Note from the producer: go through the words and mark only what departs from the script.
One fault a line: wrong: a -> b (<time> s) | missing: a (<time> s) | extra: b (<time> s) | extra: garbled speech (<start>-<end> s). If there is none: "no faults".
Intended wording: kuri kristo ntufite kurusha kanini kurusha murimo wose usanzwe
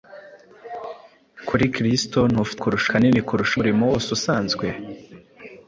no faults